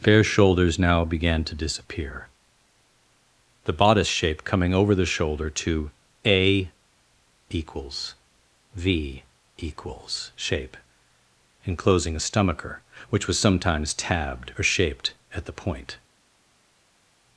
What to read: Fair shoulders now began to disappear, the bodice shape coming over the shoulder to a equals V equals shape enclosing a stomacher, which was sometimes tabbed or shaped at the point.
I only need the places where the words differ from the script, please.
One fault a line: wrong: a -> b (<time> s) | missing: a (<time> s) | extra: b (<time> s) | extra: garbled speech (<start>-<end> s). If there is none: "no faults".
no faults